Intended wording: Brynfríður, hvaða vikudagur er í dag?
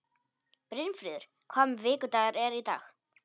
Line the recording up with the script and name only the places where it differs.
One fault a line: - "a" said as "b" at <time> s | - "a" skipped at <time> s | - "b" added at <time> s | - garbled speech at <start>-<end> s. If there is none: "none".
none